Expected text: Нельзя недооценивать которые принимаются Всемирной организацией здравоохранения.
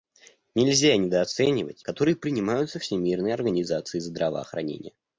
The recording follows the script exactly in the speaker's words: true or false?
true